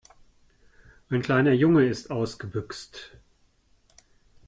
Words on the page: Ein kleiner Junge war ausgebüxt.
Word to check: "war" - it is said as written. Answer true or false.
false